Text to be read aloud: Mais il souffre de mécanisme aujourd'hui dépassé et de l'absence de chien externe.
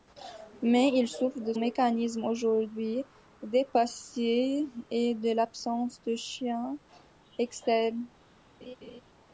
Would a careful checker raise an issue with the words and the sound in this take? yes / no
yes